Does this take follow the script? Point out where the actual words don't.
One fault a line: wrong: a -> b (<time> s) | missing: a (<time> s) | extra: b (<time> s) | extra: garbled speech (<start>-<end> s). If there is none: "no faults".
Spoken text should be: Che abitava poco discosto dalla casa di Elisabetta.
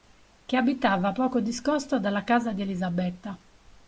no faults